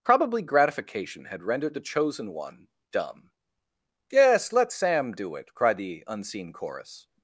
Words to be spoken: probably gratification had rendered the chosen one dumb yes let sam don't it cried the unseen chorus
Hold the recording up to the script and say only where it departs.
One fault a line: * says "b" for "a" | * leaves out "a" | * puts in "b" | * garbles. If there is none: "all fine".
* says "do" for "don't"